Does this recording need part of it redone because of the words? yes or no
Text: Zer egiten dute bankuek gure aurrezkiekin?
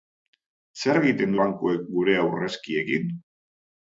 yes